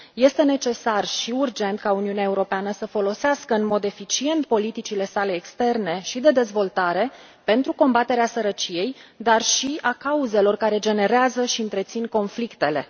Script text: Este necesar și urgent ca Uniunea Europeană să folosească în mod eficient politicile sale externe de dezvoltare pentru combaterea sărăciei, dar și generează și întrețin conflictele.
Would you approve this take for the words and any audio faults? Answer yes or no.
no